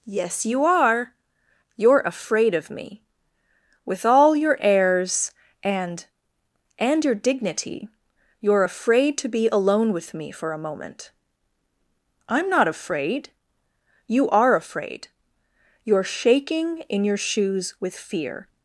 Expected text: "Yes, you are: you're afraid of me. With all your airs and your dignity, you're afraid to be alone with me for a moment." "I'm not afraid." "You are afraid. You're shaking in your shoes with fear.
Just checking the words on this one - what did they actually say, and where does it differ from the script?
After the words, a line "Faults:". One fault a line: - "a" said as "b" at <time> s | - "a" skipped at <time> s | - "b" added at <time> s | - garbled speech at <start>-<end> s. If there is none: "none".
"Yes, you are: you're afraid of me. With all your airs and and your dignity, you're afraid to be alone with me for a moment." "I'm not afraid." "You are afraid. You're shaking in your shoes with fear.
Faults:
- "and" added at 6.8 s